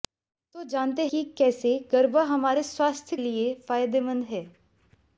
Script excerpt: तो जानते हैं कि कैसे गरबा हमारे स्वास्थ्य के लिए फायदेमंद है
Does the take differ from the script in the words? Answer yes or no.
yes